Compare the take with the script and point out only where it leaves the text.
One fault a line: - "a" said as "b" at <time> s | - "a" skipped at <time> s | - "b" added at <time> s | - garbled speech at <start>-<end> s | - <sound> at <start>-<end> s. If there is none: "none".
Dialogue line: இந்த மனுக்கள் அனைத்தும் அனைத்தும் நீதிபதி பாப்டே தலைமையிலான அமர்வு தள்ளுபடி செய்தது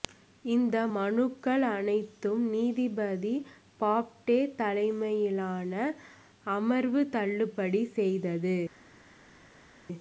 - "அனைத்தும்" skipped at 2.4 s